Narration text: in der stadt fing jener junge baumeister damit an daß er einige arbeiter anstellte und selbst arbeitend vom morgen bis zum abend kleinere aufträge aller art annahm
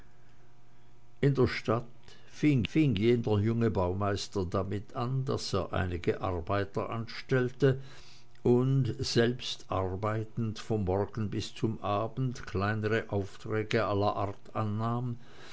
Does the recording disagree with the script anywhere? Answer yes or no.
yes